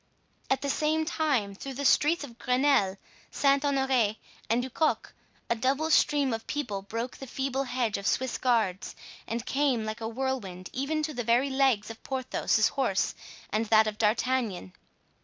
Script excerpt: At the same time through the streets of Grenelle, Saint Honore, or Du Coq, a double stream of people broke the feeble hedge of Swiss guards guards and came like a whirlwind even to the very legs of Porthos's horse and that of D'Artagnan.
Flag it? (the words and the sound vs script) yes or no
yes